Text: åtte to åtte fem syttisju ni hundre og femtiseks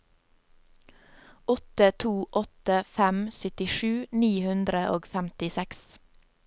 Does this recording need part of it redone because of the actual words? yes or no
no